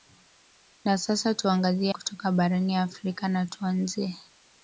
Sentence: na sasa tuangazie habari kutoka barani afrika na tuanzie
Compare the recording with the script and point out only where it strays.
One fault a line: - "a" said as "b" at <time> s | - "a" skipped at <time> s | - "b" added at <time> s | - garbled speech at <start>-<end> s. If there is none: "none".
- "habari" skipped at 1.9 s